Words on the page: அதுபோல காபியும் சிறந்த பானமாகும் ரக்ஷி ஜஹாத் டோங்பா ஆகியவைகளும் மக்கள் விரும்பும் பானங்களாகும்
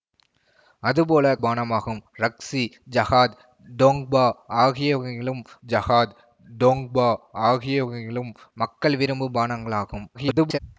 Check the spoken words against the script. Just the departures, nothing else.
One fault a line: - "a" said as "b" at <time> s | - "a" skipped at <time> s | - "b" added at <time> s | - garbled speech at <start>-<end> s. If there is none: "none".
- "காபியும் சிறந்த பானமாகும் ரக்ஷி" said as "பானமாகும் ரக்ஷி ஜஹாத் டோங்பா ஆகியவைகளும்" at 1.4 s
- garbled speech at 10.1-10.6 s